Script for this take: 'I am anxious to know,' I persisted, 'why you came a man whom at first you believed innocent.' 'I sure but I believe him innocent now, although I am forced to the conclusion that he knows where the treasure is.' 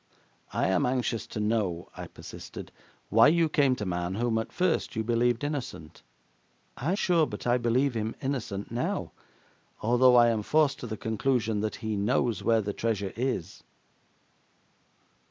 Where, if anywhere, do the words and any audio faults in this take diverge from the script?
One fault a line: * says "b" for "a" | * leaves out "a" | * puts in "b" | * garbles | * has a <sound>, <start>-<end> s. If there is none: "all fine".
all fine